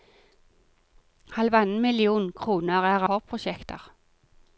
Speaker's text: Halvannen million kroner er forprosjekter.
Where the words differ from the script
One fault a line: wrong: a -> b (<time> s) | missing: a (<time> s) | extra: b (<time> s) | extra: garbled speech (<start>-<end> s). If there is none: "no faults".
no faults